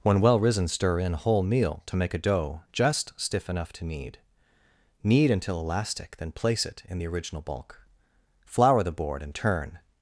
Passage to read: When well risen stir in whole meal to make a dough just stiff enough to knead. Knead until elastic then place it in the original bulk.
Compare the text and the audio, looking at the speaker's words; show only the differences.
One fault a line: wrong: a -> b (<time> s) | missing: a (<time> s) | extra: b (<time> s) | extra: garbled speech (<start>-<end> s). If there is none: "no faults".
extra: Flour the board and turn (8.5 s)